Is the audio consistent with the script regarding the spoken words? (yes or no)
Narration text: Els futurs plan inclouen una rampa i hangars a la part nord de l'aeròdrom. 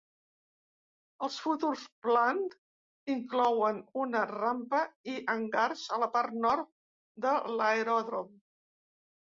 yes